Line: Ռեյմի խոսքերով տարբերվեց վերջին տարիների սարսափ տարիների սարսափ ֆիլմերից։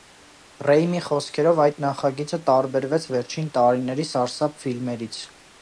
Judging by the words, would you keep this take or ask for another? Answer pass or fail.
fail